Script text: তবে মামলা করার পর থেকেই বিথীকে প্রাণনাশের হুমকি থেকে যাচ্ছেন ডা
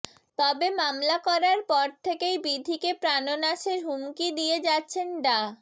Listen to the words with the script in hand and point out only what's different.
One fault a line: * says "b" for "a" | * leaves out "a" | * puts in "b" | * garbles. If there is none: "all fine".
* says "দিয়ে" for "থেকে"